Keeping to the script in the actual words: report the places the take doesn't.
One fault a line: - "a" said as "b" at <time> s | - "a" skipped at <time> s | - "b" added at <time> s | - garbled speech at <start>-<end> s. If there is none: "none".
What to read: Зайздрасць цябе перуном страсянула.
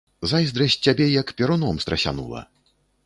- "як" added at 1.2 s